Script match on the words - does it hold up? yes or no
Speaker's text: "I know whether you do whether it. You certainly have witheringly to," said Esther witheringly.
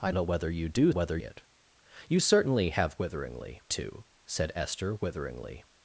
yes